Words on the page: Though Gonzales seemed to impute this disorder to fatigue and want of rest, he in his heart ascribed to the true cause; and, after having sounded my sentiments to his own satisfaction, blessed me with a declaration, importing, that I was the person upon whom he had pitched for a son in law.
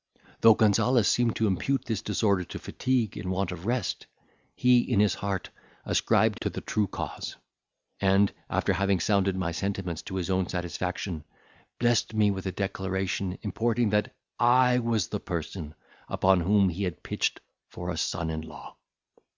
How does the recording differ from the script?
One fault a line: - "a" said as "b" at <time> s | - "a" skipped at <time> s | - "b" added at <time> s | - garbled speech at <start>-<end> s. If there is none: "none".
none